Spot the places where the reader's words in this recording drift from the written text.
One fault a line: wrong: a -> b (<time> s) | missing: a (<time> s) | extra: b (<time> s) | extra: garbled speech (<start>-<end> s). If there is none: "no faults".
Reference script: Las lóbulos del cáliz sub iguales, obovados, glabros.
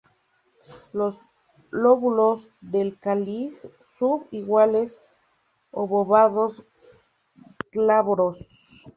wrong: Las -> Los (0.9 s)